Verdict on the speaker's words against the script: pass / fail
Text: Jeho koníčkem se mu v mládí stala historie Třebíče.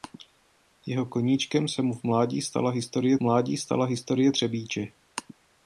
fail